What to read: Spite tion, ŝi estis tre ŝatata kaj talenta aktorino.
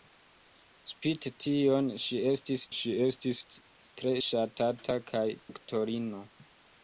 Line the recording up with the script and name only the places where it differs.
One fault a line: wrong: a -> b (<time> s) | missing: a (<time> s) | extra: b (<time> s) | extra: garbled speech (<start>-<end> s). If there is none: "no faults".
extra: ŝi estis (2.8 s)
missing: talenta (5.2 s)